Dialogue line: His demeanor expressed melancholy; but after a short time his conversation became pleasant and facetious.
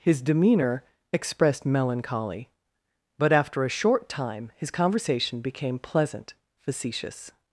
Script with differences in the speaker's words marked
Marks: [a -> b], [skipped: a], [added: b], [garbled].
His demeanor expressed melancholy; but after a short time his conversation became pleasant [skipped: and] facetious.